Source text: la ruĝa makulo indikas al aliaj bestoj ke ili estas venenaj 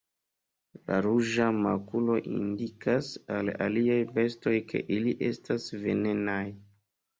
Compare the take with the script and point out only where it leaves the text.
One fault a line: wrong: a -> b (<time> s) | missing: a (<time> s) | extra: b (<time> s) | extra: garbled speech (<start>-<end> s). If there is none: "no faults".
no faults